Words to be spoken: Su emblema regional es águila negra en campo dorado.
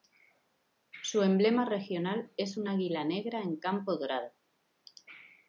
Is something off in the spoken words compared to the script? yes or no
yes